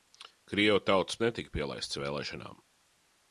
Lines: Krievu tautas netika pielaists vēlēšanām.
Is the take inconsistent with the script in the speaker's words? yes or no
no